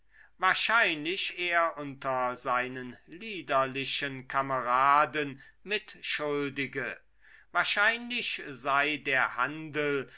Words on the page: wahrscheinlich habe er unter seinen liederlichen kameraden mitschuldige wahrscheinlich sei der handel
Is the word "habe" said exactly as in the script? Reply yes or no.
no